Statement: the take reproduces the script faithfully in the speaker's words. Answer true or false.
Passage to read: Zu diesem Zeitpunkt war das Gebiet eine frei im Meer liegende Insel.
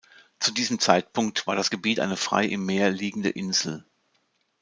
true